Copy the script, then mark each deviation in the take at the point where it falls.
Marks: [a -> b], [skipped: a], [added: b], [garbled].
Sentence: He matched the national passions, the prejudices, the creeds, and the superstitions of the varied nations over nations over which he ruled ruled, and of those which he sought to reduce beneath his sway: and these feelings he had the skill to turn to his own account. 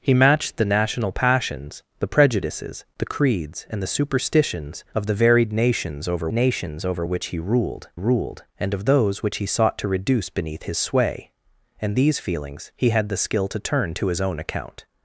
He matched the national passions, the prejudices, the creeds, and the superstitions of the varied nations over nations over which he ruled ruled, and of those which he sought to reduce beneath his sway: and these feelings he had the skill to turn to his own account.